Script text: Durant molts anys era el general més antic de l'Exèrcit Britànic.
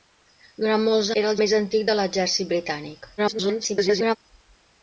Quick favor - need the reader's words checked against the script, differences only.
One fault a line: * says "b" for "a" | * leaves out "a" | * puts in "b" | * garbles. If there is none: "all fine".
* leaves out "anys"
* leaves out "general"
* garbles